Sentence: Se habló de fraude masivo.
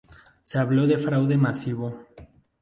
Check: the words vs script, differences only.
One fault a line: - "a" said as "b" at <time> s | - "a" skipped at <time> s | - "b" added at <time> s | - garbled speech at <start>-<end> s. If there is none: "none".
none